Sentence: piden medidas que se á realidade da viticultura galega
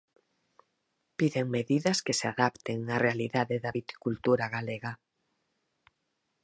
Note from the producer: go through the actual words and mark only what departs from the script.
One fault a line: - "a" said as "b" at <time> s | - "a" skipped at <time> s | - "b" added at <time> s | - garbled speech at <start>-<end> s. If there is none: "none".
- "adapten" added at 2.3 s